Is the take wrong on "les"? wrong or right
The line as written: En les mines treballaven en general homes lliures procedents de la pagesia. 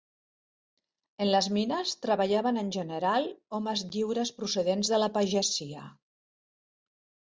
right